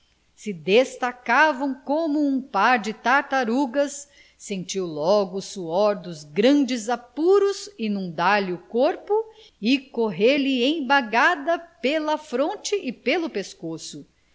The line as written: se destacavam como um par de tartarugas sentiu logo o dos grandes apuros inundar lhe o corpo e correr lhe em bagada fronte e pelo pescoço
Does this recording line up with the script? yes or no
no